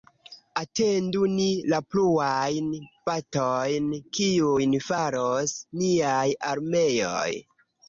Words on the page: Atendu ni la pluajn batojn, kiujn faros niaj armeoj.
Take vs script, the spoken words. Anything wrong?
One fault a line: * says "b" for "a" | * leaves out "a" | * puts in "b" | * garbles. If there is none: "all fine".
all fine